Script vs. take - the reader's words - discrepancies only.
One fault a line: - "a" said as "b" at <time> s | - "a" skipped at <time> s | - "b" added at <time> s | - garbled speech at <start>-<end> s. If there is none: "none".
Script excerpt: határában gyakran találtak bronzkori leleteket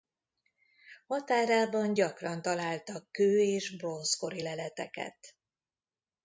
- "kő és" added at 3.1 s